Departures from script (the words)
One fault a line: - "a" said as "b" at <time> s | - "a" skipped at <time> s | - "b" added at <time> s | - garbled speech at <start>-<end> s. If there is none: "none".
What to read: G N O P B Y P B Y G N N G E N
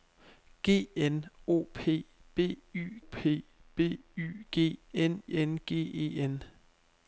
none